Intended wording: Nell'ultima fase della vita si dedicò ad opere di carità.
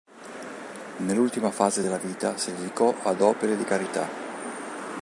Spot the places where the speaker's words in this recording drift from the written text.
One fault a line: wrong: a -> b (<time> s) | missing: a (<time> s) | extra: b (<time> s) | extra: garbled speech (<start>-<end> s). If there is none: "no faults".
no faults